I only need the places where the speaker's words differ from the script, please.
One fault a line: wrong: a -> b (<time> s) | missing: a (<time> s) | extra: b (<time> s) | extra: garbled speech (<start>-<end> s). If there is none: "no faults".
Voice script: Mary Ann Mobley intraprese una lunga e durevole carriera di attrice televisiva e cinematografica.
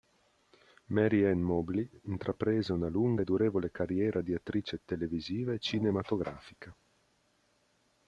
no faults